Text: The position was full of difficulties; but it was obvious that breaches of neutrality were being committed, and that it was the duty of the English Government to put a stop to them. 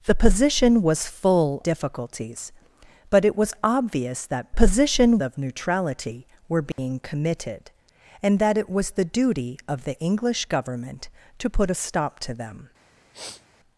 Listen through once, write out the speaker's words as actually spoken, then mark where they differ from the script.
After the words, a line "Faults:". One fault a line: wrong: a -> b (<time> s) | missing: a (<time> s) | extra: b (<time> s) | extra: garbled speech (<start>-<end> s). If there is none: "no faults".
The position was full difficulties; but it was obvious that position of neutrality were being committed, and that it was the duty of the English Government to put a stop to them.
Faults:
missing: of (1.6 s)
wrong: breaches -> position (4.5 s)